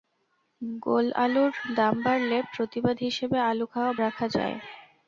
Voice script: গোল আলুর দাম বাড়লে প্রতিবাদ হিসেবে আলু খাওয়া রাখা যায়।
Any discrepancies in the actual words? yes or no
no